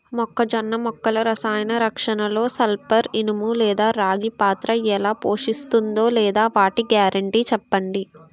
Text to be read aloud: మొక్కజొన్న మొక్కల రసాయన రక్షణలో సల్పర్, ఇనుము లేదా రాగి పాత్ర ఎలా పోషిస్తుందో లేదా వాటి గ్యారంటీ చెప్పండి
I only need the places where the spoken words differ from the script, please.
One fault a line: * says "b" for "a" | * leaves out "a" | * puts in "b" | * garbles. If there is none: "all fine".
all fine